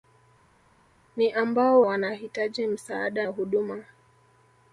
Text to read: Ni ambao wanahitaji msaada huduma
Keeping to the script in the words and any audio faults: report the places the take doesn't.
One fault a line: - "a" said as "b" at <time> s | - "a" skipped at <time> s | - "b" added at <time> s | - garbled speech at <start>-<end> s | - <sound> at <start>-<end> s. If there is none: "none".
none